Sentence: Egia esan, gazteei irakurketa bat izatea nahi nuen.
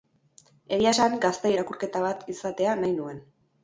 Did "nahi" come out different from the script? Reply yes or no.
no